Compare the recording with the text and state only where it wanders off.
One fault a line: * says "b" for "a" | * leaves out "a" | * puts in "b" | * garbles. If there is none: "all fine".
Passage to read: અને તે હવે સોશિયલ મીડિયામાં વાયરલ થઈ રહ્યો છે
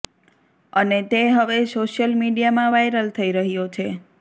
all fine